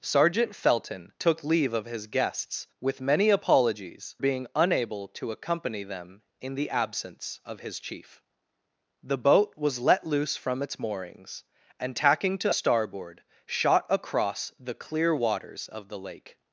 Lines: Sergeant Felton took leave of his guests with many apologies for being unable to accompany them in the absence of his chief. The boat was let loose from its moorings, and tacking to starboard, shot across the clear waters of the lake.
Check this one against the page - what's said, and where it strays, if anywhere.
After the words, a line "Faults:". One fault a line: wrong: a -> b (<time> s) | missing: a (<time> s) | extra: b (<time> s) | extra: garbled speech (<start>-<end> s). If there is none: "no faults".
Sergeant Felton took leave of his guests with many apologies being unable to accompany them in the absence of his chief. The boat was let loose from its moorings, and tacking to starboard, shot across the clear waters of the lake.
Faults:
missing: for (4.2 s)